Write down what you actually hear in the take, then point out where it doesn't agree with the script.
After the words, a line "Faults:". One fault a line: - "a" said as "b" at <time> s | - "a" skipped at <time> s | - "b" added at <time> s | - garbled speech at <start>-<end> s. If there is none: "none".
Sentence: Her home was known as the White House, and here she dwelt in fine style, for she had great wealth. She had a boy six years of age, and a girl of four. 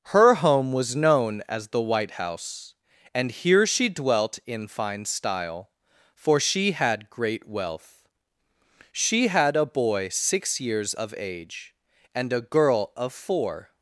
Her home was known as the White House, and here she dwelt in fine style, for she had great wealth. She had a boy six years of age, and a girl of four.
Faults:
none